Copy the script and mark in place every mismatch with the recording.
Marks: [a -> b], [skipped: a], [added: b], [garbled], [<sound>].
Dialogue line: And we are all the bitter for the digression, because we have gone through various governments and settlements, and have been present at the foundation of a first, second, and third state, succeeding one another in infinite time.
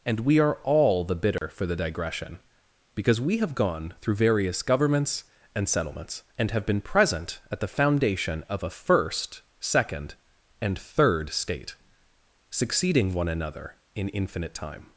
And we are all the bitter [dropout] for the digression, because we have gone through various governments and settlements, and have been present at the foundation of a first, second, and third state, succeeding one another in infinite time.